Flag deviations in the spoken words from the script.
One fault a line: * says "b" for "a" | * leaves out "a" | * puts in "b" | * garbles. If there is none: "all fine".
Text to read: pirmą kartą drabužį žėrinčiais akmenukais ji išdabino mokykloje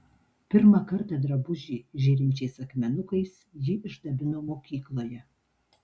all fine